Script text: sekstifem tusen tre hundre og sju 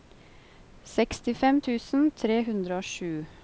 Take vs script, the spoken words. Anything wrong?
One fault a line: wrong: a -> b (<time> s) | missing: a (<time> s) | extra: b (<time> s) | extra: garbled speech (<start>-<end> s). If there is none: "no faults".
no faults